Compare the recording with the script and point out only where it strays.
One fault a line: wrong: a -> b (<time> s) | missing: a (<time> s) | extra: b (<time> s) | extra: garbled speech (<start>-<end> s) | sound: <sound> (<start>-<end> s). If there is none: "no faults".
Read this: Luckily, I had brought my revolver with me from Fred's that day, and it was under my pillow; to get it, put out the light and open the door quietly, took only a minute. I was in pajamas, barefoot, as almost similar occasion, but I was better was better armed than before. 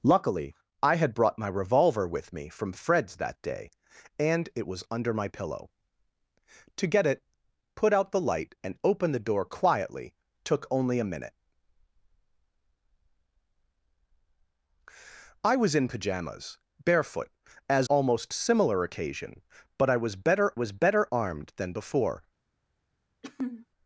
sound: throat clearing (23.2-23.7 s)